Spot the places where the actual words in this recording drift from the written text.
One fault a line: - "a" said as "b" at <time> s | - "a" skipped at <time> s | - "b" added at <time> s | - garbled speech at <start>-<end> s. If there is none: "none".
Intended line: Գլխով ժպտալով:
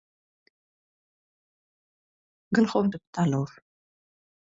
none